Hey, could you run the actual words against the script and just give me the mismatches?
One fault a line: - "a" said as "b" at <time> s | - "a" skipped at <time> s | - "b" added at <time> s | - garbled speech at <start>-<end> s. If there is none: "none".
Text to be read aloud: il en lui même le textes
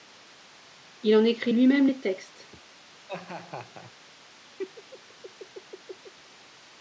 - "écrit" added at 1.2 s
- "le" said as "les" at 1.8 s